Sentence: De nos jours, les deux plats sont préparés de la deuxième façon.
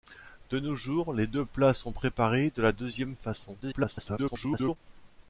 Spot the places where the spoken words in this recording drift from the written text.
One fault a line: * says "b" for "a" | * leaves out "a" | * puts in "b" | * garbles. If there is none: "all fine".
* garbles